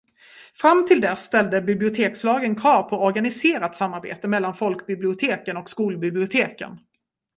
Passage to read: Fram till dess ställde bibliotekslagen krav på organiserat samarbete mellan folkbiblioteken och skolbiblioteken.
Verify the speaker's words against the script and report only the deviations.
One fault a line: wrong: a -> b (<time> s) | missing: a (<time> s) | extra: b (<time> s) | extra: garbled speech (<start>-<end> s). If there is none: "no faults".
no faults